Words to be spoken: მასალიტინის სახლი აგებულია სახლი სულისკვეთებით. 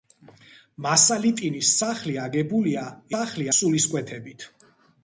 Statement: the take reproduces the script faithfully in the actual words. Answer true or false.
true